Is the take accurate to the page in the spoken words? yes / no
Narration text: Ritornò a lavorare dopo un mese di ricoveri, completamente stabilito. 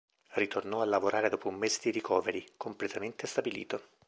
yes